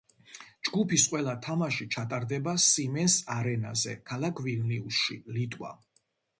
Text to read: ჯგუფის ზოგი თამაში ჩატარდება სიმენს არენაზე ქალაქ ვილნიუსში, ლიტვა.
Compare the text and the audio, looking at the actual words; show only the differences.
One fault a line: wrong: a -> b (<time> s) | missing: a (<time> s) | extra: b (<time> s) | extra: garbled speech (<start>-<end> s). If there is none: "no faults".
wrong: ზოგი -> ყველა (1.1 s)